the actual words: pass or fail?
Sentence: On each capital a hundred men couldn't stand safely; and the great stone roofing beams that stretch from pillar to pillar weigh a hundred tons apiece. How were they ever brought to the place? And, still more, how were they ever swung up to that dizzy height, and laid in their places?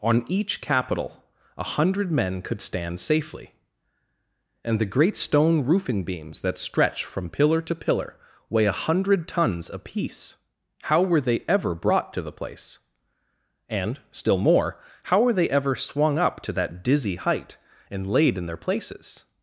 fail